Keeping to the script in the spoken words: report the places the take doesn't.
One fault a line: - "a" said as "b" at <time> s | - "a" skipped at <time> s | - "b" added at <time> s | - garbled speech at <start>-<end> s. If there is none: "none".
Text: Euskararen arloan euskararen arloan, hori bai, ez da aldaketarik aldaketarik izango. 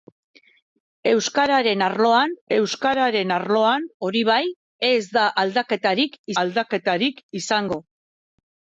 none